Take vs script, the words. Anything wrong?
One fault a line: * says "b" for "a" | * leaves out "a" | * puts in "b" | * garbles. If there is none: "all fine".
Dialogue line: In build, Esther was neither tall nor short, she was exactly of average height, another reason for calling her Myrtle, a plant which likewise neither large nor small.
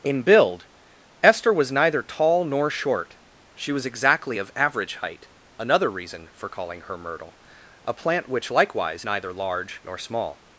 all fine